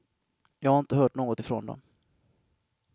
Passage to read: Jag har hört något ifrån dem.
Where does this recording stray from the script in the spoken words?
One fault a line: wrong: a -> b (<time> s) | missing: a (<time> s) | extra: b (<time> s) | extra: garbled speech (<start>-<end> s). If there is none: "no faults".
extra: inte (0.8 s)